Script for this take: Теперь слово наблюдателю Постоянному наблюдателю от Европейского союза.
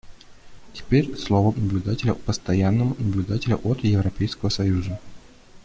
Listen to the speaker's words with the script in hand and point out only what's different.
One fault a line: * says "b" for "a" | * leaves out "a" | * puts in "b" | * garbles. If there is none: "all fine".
all fine